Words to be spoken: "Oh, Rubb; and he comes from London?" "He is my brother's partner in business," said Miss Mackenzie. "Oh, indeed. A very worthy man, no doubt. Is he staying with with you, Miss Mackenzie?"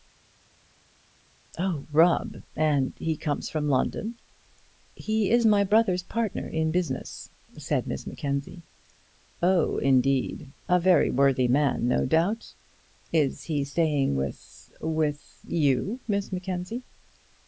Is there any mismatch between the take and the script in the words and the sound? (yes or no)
no